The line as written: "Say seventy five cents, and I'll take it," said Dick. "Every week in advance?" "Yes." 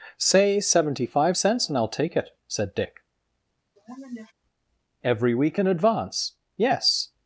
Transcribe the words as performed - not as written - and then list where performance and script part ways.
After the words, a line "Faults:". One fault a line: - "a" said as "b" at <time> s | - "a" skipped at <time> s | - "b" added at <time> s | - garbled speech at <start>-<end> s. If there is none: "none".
"Say seventy five cents, and I'll take it," said Dick. "Every week in advance?" "Yes."
Faults:
none